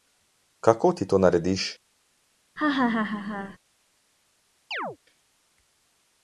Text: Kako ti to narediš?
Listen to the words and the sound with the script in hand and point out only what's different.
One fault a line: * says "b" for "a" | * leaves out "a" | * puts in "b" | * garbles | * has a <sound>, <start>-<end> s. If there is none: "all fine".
* has a laugh, 2.6-3.6 s
* has a chirp, 4.7-5.0 s